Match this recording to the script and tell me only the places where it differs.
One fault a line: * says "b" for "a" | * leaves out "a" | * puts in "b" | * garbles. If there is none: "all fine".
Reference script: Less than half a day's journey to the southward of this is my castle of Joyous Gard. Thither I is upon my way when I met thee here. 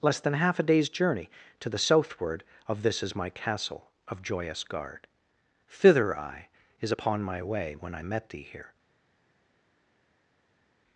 all fine